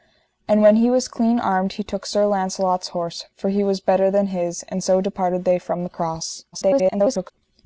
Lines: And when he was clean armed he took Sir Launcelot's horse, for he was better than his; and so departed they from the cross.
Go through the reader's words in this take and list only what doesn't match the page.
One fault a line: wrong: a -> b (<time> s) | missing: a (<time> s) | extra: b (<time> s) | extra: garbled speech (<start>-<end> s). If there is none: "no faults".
extra: garbled speech (6.5-7.3 s)